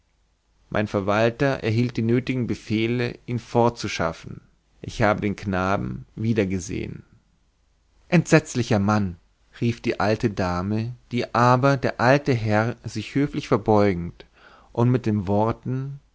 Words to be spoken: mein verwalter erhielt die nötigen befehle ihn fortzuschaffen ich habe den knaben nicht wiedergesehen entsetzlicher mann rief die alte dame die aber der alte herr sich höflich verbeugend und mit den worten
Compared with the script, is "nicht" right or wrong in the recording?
wrong